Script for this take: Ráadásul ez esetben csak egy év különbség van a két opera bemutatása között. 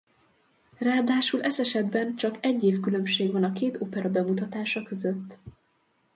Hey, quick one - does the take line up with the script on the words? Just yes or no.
yes